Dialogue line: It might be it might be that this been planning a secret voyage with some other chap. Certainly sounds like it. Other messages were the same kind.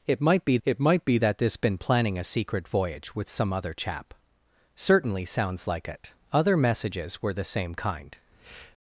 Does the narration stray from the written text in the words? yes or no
no